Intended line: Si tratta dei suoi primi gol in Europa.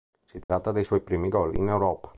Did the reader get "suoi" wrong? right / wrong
right